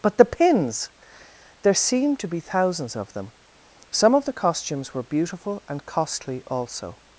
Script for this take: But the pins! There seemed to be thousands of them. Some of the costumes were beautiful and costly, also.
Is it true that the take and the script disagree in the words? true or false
false